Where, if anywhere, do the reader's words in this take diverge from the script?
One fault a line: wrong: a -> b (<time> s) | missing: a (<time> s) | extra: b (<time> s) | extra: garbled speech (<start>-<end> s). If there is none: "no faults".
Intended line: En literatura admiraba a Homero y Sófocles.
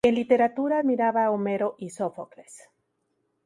no faults